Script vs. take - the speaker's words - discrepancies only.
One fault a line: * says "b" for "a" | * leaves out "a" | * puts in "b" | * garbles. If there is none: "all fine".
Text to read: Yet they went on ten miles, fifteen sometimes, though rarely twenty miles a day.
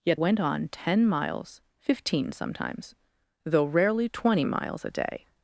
* leaves out "they"